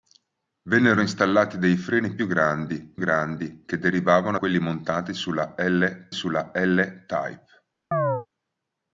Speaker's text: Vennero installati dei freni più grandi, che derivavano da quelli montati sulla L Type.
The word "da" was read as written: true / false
false